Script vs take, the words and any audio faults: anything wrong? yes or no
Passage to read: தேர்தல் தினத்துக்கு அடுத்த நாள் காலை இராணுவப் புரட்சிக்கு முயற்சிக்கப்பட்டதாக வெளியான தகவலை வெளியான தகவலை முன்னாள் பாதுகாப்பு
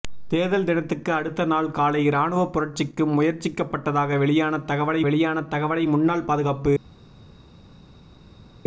no